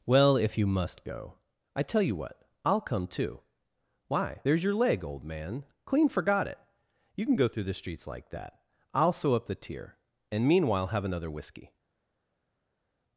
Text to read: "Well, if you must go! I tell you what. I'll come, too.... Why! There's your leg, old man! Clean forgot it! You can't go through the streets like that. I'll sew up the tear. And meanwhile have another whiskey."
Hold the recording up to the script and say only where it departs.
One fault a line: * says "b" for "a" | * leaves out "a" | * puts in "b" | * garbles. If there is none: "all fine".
* says "can" for "can't"